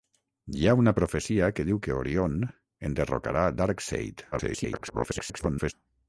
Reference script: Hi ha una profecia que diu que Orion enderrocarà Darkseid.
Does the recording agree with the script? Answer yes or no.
no